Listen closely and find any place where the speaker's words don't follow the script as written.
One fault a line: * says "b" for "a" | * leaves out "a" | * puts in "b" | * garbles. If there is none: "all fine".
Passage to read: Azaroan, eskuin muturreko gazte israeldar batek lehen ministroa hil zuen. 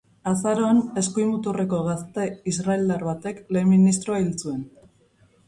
all fine